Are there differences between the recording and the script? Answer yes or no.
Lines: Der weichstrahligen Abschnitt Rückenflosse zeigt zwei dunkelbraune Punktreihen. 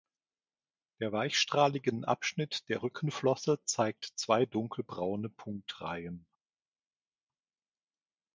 yes